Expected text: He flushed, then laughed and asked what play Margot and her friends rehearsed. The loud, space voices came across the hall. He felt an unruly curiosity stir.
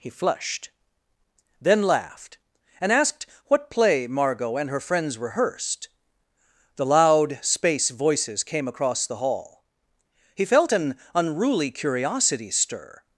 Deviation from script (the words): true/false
false